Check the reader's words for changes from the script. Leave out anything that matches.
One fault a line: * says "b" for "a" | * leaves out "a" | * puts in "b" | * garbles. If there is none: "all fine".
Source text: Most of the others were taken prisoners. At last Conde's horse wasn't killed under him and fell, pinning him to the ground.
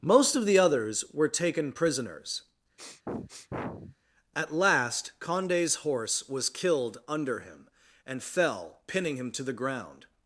* says "was" for "wasn't"